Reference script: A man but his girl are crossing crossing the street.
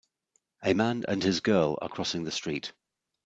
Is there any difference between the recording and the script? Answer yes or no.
yes